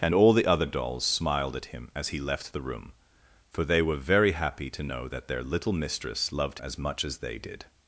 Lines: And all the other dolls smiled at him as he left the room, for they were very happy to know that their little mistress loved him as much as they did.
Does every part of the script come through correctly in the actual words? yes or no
no